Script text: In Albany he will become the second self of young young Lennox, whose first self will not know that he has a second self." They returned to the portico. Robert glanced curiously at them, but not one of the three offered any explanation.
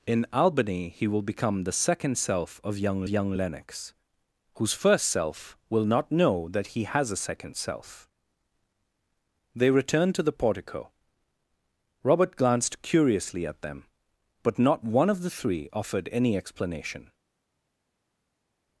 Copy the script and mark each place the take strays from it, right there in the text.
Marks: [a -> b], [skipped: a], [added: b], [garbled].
In Albany he will become the second self of young young Lennox, whose first self will not know that he has a second self." They returned to the portico. Robert glanced curiously at them, but not one of the three offered any explanation.